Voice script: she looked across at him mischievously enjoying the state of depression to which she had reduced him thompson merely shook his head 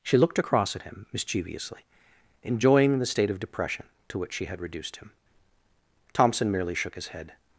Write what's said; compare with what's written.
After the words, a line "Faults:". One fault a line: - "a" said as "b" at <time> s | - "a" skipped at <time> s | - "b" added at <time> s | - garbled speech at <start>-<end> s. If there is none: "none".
she looked across at him mischievously enjoying the state of depression to which she had reduced him thompson merely shook his head
Faults:
none